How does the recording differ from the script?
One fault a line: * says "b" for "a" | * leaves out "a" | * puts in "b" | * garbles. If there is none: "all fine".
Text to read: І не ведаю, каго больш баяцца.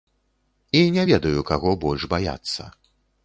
all fine